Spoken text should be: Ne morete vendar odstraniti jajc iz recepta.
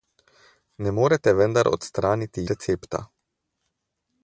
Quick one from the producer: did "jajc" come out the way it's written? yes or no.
no